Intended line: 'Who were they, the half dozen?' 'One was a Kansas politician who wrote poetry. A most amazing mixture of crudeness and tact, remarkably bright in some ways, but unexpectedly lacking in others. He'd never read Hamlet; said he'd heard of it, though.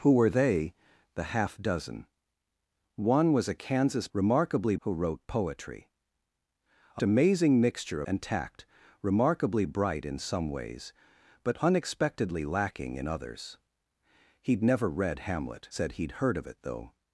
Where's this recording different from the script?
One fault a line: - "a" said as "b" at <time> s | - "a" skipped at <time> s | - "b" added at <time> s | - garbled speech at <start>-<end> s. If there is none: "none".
- "politician" said as "remarkably" at 4.1 s
- "most" skipped at 7.0 s
- "of crudeness" skipped at 8.0 s